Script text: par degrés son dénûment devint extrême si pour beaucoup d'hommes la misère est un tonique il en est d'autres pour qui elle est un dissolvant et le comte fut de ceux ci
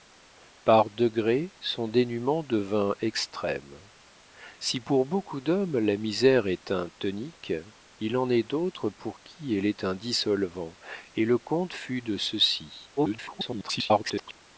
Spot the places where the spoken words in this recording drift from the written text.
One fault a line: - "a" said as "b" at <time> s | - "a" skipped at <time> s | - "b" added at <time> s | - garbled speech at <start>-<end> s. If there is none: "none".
- garbled speech at 13.0-14.4 s